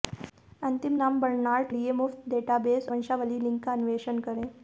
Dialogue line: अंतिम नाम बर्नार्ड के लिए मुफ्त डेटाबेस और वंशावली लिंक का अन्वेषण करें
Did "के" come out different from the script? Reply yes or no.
yes